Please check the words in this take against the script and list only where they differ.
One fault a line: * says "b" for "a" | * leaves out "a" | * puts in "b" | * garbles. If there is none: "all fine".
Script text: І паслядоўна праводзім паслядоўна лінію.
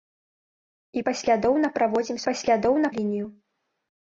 all fine